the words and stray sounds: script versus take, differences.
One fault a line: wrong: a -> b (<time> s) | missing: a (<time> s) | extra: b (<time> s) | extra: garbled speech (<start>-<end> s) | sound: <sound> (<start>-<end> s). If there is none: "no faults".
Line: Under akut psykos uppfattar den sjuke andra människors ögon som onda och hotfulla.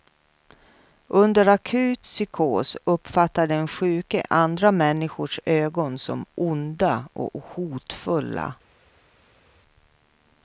no faults